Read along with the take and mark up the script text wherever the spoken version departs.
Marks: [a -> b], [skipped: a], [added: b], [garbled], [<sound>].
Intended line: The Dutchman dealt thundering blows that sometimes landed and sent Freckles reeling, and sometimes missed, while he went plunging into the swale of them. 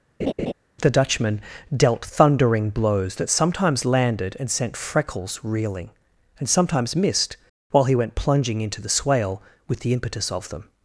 [laugh] The Dutchman dealt thundering blows that sometimes landed and sent Freckles reeling, and sometimes missed, while he went plunging into the swale [added: with the impetus] of them.